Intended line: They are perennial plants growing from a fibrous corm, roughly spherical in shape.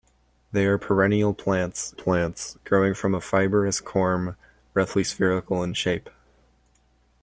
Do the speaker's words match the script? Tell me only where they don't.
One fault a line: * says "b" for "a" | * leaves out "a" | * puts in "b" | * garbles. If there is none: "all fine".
* puts in "plants"